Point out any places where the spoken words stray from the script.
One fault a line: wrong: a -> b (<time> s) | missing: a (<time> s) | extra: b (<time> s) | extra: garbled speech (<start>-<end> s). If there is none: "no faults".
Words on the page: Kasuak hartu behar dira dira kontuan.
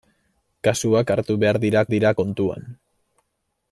no faults